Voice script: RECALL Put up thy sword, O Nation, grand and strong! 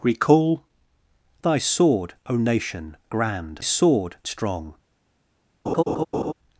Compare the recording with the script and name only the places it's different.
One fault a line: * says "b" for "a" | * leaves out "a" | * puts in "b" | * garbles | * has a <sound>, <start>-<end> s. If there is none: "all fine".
* leaves out "Put up"
* says "sword" for "and"
* has a laugh, 5.7-6.3 s